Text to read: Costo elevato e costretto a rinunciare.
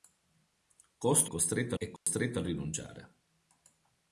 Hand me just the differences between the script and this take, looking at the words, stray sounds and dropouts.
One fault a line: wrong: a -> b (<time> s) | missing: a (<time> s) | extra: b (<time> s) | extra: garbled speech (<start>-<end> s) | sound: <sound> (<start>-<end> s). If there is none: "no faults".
wrong: elevato -> costretto (1.3 s)
sound: dropout (2.0-2.1 s)